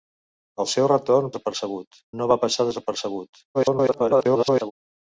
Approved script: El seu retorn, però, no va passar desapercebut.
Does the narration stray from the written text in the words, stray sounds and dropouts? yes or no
yes